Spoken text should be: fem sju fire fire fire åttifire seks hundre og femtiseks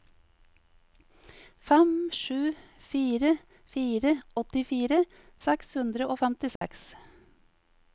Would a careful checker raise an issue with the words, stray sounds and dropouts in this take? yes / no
yes